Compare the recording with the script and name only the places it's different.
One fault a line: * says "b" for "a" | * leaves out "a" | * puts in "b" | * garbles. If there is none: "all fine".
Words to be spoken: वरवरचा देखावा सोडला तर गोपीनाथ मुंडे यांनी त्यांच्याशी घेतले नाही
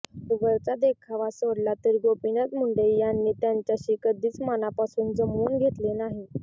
* puts in "कधीच मनापासून जमवून"